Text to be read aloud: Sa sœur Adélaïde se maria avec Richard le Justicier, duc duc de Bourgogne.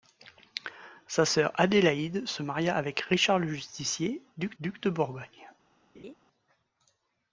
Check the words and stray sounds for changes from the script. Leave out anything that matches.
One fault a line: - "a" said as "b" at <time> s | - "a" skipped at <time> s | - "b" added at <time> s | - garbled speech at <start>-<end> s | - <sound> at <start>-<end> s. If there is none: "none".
- laugh at 5.9-6.1 s